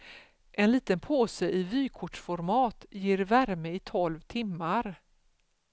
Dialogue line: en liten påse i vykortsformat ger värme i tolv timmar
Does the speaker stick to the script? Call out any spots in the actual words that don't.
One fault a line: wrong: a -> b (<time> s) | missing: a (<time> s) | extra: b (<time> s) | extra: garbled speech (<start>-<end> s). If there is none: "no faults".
no faults